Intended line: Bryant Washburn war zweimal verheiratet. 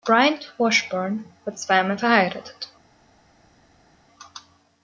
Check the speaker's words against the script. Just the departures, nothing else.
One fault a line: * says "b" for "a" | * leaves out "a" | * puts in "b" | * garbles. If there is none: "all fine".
all fine